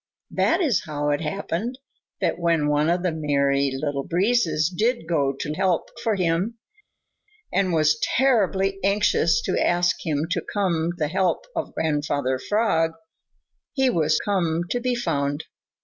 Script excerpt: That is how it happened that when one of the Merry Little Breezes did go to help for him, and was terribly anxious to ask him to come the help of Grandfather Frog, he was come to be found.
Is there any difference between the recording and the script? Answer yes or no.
no